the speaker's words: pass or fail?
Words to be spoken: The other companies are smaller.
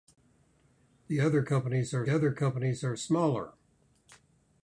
fail